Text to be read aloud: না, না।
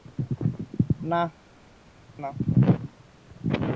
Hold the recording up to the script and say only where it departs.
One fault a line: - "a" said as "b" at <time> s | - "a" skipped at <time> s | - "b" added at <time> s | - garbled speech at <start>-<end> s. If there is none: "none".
none